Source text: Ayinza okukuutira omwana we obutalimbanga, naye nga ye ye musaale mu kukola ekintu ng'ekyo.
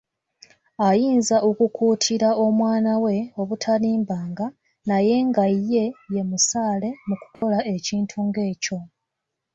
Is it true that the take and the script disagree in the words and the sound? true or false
true